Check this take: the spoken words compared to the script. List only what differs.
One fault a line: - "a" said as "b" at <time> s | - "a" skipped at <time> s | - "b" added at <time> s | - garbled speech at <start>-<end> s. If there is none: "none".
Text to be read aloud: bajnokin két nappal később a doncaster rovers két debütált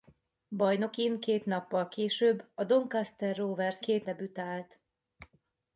none